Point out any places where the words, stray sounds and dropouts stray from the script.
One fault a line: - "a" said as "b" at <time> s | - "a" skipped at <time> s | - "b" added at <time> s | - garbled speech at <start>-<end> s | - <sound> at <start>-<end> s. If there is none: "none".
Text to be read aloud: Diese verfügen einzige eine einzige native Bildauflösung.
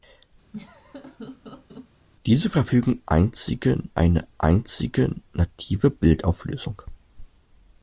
- laugh at 0.5-1.9 s